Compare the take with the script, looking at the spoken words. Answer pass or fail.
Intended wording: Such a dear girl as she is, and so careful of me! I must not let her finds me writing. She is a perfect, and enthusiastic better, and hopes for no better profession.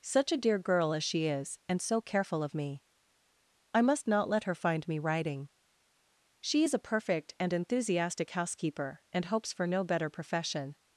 fail